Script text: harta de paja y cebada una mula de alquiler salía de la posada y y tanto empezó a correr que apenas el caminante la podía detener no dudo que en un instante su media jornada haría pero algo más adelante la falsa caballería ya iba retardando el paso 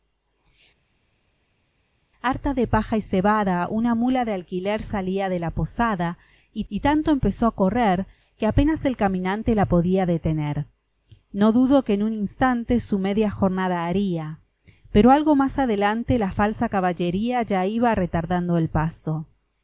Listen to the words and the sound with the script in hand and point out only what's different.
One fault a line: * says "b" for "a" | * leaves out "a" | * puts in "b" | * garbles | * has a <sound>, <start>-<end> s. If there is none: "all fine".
all fine